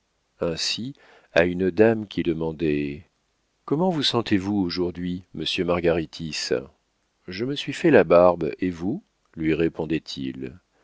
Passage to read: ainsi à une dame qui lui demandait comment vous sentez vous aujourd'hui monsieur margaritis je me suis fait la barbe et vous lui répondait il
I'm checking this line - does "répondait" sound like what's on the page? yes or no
yes